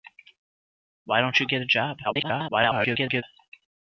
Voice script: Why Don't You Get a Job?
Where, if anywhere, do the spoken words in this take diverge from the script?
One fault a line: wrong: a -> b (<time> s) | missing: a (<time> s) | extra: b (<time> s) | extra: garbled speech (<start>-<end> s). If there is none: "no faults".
extra: garbled speech (2.0-3.2 s)